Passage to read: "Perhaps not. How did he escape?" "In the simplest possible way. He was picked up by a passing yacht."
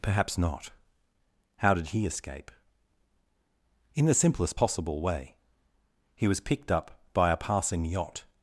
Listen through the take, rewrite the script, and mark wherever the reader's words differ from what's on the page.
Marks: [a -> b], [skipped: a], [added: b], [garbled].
"Perhaps not. How did he escape?" "In the simplest possible way. He was picked up by a passing yacht."